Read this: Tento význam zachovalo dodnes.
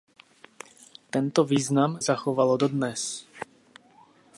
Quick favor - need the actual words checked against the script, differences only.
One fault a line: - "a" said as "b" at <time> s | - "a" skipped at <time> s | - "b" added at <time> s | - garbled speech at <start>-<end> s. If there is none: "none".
none